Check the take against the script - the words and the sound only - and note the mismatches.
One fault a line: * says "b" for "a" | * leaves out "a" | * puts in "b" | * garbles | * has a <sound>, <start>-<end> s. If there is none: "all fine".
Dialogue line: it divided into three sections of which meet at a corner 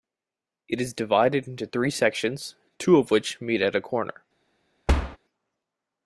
* puts in "is"
* puts in "two"
* has a thud, 4.9-5.2 s